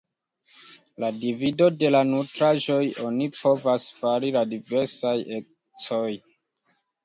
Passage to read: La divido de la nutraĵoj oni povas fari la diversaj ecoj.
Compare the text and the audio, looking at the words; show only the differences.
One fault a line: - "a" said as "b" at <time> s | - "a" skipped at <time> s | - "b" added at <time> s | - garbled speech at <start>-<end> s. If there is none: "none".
none